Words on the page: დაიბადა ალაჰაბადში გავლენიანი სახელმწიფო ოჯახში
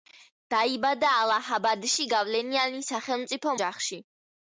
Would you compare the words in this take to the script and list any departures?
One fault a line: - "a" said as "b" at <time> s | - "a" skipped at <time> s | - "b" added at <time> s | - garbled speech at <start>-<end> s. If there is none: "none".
none